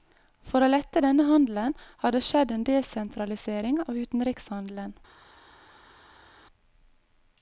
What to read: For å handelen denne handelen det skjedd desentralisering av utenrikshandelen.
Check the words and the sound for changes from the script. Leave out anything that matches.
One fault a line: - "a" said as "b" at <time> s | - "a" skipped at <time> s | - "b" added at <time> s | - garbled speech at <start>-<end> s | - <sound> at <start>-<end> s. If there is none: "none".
- "handelen" said as "lette" at 0.7 s
- "har" added at 2.0 s
- "en" added at 2.5 s